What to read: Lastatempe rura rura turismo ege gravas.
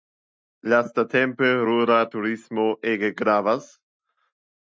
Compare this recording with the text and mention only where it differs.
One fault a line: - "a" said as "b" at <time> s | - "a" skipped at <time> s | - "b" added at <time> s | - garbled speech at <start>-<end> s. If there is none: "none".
- "rura" skipped at 2.0 s